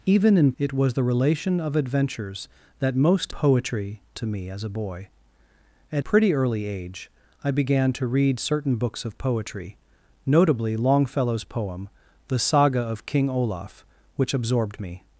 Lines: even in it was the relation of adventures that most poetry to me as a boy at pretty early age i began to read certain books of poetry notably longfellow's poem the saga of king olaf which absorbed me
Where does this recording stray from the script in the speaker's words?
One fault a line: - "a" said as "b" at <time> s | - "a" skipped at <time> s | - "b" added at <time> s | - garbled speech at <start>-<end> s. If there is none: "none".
none